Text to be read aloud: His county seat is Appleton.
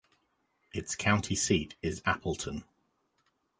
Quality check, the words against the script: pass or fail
fail